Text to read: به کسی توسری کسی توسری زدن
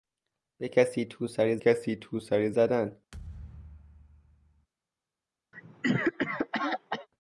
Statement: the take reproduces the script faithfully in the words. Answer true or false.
true